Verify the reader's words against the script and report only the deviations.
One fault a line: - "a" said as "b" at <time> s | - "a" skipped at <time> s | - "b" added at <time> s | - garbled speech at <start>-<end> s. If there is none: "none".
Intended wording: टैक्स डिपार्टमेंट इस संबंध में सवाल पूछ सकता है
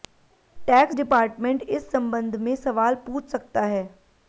none